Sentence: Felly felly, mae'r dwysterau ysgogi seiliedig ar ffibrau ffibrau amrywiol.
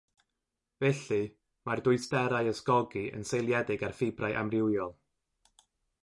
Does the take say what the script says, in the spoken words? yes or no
no